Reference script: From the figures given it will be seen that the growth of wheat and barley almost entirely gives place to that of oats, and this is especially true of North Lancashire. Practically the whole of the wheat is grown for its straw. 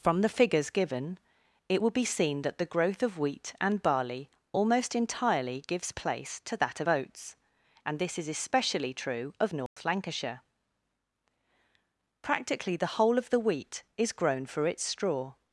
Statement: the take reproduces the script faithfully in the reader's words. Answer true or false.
true